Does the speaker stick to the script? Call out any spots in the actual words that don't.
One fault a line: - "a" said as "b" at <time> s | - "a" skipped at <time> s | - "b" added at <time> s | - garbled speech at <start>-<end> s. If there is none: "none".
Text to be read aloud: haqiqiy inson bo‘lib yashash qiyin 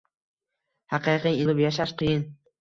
- "inson" skipped at 1.4 s